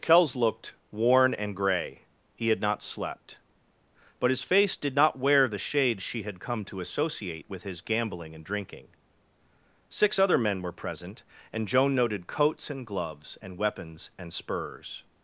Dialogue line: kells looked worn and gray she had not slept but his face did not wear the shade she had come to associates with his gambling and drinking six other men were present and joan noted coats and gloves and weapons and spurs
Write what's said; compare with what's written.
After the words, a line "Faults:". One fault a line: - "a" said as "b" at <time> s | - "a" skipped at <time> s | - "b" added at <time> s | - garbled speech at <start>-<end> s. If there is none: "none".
kells looked worn and gray he had not slept but his face did not wear the shade she had come to associate with his gambling and drinking six other men were present and joan noted coats and gloves and weapons and spurs
Faults:
- "she" said as "he" at 2.3 s
- "associates" said as "associate" at 6.8 s